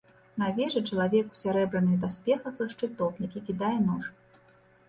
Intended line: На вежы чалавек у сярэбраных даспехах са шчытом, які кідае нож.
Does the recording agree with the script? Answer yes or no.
yes